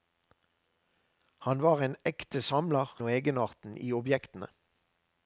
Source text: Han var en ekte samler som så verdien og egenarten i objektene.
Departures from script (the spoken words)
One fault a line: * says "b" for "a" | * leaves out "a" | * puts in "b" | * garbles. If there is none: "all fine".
* leaves out "som så verdien"